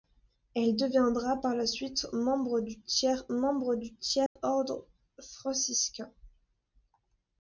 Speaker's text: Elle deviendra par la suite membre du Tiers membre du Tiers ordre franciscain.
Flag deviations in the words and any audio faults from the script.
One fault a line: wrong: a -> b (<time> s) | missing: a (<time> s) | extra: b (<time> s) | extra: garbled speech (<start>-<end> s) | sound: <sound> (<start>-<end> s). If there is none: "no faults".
sound: dropout (4.3-4.4 s)